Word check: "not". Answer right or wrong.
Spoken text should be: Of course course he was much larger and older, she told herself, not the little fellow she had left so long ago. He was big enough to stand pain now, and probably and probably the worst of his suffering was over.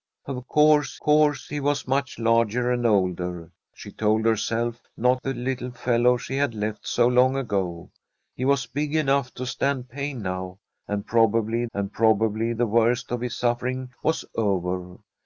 right